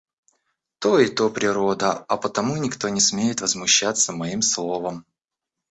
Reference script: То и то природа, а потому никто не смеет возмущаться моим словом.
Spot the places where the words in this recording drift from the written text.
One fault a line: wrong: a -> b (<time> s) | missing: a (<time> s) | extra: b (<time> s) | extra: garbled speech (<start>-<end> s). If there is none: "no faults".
no faults